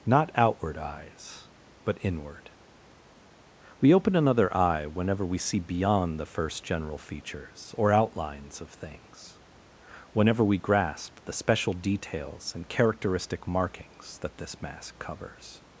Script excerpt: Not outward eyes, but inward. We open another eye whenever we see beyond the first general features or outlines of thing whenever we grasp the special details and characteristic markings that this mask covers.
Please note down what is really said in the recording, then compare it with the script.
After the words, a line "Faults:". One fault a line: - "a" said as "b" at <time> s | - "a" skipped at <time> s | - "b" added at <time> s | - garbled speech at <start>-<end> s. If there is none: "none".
Not outward eyes, but inward. We open another eye whenever we see beyond the first general features or outlines of things whenever we grasp the special details and characteristic markings that this mask covers.
Faults:
- "thing" said as "things" at 8.7 s